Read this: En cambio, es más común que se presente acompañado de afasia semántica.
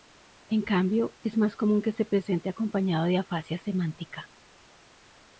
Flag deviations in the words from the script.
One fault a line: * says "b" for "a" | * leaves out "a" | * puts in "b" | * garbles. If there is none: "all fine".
all fine